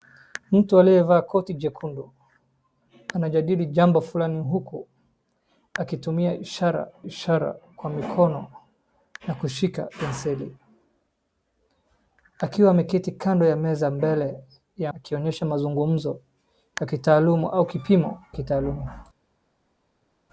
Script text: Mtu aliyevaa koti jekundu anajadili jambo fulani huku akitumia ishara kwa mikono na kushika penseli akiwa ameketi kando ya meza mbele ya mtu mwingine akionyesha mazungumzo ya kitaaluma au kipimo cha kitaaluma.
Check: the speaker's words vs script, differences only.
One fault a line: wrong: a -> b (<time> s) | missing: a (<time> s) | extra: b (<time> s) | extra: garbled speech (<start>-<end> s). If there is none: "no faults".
extra: ishara (7.0 s)
missing: mtu mwingine (14.9 s)
missing: cha (18.2 s)